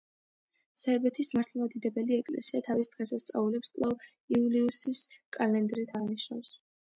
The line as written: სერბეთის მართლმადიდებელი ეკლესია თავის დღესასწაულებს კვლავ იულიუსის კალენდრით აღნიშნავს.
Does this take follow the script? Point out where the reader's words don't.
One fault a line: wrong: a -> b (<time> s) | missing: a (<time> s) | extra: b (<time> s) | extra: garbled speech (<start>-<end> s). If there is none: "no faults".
no faults